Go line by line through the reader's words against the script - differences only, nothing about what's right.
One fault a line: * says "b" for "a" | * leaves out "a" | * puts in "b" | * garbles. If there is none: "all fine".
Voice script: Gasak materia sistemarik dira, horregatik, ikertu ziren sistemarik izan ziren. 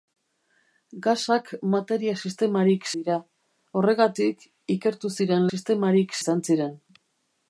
all fine